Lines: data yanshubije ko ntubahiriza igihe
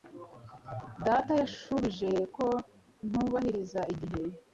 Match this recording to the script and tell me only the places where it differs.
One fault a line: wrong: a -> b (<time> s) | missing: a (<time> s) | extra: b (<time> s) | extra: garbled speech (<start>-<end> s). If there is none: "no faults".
no faults